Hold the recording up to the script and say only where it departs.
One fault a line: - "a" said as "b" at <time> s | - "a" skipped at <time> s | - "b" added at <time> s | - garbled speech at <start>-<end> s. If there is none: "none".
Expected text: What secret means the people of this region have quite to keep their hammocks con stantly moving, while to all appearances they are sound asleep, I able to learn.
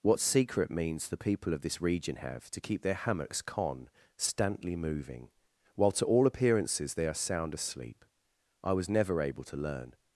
- "quite" skipped at 2.5 s
- "was never" added at 8.7 s